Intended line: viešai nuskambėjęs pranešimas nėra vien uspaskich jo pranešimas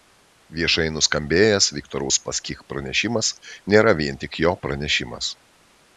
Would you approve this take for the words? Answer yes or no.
no